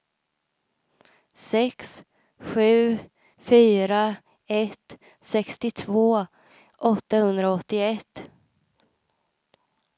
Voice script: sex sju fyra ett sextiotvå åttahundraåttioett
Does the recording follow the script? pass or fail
pass